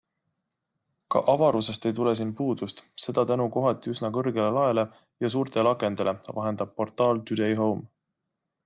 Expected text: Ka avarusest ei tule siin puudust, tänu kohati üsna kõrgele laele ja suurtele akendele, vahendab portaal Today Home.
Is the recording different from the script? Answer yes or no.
yes